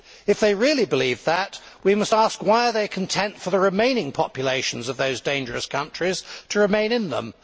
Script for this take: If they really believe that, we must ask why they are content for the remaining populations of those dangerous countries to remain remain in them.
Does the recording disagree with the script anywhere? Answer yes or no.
yes